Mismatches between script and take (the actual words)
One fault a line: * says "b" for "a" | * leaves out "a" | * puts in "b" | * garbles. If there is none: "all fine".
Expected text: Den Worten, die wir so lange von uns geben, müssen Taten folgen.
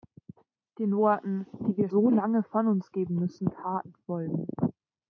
all fine